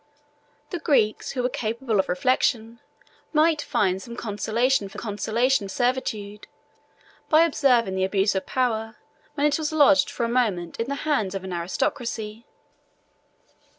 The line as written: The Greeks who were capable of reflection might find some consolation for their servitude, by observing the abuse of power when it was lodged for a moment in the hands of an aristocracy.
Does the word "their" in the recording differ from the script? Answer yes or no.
yes